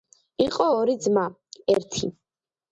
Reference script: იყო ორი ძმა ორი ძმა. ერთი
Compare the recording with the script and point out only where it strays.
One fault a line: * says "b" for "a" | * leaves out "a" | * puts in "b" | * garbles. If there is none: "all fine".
* leaves out "ორი ძმა"